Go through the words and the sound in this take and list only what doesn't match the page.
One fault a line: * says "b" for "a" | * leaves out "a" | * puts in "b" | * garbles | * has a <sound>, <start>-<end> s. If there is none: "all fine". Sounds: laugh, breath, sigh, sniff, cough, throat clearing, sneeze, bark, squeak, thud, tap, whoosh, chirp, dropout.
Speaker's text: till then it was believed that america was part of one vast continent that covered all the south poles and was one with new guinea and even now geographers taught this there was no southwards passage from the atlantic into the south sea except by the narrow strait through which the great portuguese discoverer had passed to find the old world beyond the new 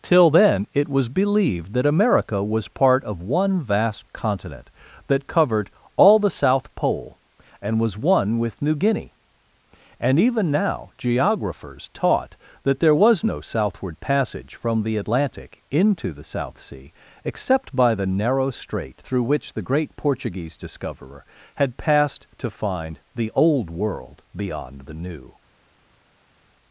* says "pole" for "poles"
* says "that" for "this"
* says "southward" for "southwards"